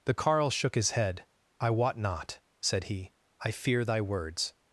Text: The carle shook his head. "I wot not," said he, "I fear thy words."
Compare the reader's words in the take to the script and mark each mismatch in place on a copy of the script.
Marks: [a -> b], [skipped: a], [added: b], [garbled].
The carle shook his head. "I wot not," said he, "I fear thy words."